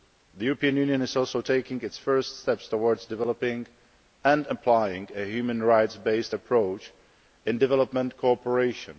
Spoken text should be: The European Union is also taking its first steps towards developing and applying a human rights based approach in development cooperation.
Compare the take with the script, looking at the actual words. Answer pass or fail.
pass